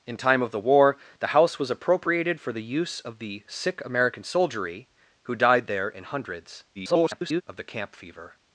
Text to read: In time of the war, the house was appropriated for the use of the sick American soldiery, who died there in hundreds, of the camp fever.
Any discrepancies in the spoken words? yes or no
yes